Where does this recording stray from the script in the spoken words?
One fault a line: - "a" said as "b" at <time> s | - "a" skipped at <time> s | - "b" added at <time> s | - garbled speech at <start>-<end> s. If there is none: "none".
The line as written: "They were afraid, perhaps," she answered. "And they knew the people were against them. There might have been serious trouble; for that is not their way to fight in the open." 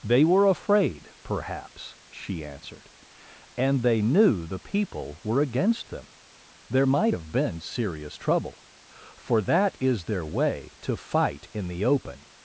- "not" skipped at 10.0 s